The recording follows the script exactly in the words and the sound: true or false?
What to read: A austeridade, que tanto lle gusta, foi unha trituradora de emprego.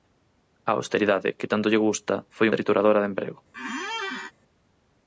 false